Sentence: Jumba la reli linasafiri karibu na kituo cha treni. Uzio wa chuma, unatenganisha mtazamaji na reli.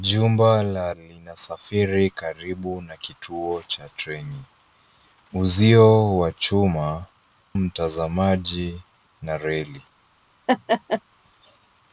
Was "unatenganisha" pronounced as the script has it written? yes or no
no